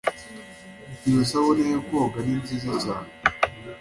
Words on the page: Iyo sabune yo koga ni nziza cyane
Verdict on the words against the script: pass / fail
pass